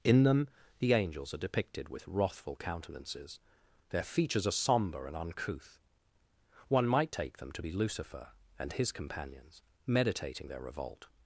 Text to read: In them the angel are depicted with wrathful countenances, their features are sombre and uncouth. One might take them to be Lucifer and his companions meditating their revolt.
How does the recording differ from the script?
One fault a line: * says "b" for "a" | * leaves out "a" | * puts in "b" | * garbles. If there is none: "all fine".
* says "angels" for "angel"